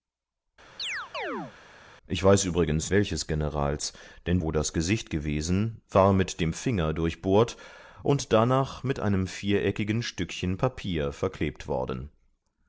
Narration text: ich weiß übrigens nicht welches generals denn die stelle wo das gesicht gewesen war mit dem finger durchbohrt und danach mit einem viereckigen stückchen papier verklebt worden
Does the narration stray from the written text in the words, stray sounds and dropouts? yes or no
yes